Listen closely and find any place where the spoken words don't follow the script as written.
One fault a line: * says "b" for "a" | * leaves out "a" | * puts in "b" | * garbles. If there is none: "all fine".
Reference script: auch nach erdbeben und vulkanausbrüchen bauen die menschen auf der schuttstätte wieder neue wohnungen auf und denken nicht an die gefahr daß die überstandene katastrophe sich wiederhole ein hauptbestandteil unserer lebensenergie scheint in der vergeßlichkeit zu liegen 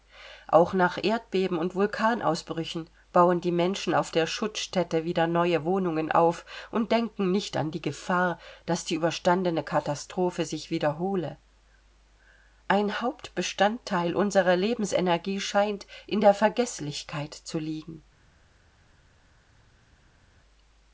all fine